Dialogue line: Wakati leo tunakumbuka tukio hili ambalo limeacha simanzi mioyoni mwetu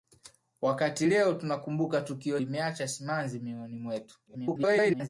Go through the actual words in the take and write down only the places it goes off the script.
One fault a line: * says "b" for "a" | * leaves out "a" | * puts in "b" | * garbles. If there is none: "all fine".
* leaves out "hili ambalo"
* garbles